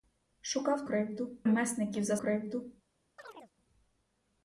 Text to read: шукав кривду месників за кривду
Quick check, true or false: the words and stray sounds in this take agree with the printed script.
false